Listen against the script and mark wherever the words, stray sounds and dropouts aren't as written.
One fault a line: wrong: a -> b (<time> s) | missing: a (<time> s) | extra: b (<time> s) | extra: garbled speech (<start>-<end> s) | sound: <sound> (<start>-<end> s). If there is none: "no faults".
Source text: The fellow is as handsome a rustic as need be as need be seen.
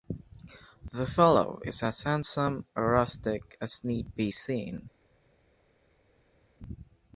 missing: as need be (4.3 s)